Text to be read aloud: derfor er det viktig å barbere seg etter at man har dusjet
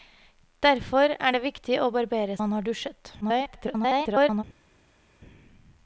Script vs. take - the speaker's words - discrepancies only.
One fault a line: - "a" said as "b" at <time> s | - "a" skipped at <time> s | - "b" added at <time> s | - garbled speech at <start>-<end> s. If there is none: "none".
- "seg etter at" skipped at 2.4 s
- garbled speech at 3.2-4.4 s